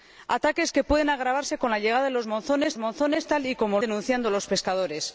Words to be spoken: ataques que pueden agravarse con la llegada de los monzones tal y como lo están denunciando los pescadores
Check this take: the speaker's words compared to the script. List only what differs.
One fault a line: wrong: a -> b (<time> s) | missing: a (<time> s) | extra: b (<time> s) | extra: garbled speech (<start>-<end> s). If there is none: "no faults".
extra: monzones (2.8 s)
missing: lo están (3.8 s)